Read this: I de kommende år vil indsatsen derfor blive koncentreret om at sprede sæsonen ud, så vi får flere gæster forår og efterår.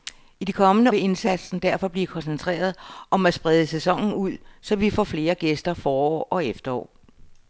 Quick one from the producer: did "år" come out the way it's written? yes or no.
no